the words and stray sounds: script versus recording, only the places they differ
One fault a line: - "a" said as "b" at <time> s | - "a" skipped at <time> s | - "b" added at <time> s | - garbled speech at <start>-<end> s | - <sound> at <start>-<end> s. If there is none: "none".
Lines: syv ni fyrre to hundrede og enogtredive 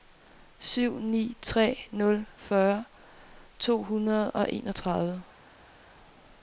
- "tre nul" added at 1.4 s